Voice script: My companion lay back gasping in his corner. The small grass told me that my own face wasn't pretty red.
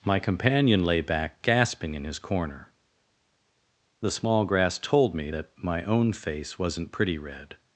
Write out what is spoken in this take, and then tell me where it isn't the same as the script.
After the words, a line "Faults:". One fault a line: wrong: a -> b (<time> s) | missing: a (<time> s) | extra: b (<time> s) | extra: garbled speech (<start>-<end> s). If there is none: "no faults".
My companion lay back gasping in his corner. The small grass told me that my own face wasn't pretty red.
Faults:
no faults